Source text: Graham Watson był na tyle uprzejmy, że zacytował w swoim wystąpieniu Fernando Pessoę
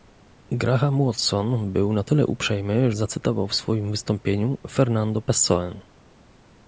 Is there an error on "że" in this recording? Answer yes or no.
yes